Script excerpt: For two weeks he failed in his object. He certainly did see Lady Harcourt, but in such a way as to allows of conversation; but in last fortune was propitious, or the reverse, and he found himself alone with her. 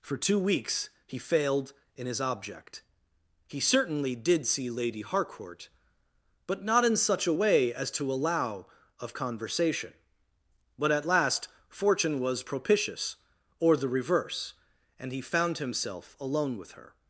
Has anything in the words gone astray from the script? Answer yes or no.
yes